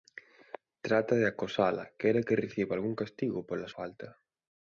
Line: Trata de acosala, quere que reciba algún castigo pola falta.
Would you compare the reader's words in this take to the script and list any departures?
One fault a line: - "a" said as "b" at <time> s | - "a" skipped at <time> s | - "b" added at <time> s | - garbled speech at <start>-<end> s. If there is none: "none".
none